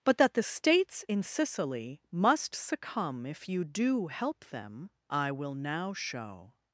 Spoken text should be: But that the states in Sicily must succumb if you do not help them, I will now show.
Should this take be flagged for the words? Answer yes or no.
yes